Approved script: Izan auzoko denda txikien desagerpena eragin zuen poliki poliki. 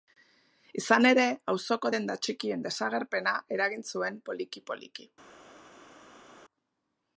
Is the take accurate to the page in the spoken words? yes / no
no